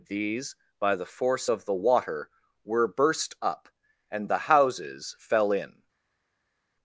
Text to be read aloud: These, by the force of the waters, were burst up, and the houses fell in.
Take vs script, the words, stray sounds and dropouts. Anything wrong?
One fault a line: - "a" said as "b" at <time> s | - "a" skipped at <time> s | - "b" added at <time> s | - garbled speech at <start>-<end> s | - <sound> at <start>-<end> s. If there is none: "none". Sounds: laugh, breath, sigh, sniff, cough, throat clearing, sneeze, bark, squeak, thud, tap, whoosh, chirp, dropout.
- "waters" said as "water" at 1.7 s